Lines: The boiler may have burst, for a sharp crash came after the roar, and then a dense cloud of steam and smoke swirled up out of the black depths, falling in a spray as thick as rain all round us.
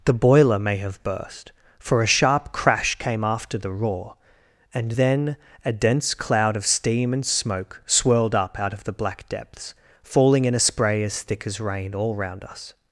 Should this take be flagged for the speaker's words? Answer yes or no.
no